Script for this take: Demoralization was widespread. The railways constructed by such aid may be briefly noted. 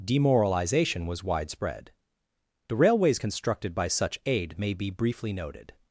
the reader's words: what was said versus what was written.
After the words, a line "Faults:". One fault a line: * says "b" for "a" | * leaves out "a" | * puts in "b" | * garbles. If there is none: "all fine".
Demoralization was widespread. The railways constructed by such aid may be briefly noted.
Faults:
all fine